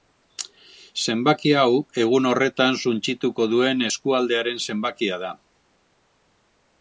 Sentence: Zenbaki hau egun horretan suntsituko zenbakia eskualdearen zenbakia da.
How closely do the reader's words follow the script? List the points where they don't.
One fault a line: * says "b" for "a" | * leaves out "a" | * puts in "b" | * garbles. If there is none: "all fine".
* says "duen" for "zenbakia"